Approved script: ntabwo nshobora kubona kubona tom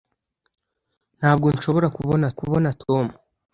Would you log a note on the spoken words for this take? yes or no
no